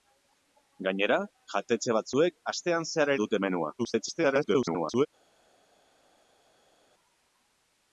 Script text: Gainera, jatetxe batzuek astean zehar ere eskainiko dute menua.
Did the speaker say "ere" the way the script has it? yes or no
no